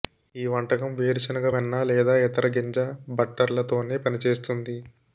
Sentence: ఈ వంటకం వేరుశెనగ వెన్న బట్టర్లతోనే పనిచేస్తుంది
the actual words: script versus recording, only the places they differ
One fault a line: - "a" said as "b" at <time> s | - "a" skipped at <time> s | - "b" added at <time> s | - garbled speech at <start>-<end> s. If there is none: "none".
- "లేదా ఇతర గింజ" added at 1.8 s